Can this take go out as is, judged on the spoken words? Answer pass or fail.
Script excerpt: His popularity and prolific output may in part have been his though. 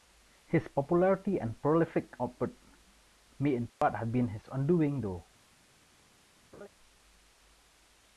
fail